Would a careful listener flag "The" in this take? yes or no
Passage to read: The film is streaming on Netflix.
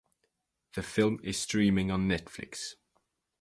no